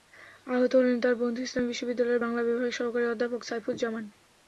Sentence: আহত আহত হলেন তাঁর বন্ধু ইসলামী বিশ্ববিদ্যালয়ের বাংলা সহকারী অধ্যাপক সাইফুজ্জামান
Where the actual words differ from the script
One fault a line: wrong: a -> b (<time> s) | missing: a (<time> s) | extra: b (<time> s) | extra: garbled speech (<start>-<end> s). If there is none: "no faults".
missing: আহত (0.7 s)
extra: বিভাগের (2.4 s)